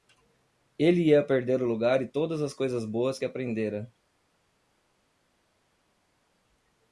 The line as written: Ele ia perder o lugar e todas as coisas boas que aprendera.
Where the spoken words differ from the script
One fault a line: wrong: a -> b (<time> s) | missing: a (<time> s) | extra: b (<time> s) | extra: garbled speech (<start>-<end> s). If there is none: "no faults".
no faults